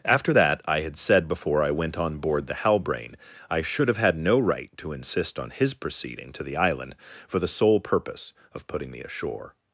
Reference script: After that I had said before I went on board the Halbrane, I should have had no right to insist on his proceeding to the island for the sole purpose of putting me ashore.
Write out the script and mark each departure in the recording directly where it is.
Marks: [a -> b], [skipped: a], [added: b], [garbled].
After that I had said before I went on board the Halbrane, I should have had no right to insist on his proceeding to the island for the sole purpose of putting me ashore.